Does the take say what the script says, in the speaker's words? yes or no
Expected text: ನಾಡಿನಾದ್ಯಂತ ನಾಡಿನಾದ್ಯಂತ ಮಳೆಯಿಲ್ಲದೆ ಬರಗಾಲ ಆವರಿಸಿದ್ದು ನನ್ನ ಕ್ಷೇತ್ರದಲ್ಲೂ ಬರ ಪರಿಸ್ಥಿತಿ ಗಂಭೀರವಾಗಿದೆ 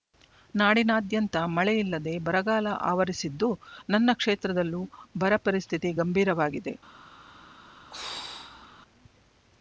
no